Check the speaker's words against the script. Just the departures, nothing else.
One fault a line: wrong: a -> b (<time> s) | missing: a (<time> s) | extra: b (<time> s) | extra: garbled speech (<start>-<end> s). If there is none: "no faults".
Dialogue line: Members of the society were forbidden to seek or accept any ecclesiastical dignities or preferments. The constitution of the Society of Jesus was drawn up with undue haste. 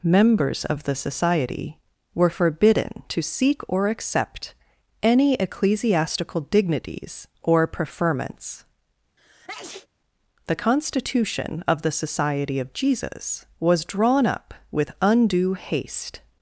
no faults